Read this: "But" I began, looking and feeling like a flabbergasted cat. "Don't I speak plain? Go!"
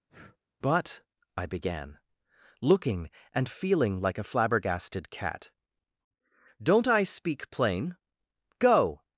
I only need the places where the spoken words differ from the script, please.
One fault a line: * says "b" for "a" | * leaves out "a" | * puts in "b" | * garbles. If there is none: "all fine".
all fine